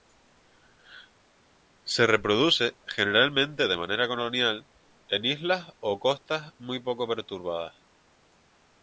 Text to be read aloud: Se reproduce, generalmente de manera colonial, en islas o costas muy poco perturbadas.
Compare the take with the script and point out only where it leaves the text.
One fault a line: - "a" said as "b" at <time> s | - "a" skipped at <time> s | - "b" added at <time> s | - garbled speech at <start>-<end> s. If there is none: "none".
none